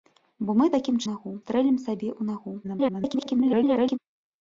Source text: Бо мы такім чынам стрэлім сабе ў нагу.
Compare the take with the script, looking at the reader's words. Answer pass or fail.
fail